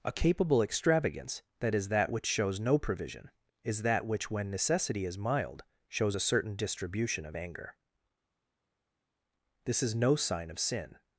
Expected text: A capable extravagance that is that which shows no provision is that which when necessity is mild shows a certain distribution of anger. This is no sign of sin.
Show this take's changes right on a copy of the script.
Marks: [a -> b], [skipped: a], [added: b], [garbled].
A capable extravagance that is that which shows no provision is that which when necessity is mild shows a certain distribution of anger. This is no sign of sin.